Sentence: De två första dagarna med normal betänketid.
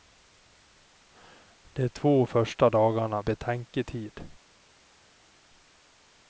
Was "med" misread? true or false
true